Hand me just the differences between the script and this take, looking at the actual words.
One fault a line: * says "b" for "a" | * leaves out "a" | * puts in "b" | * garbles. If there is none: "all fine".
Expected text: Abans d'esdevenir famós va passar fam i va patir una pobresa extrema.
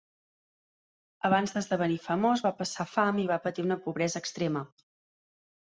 all fine